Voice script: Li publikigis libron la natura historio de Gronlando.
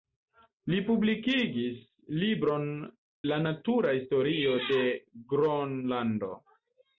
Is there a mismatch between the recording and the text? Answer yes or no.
no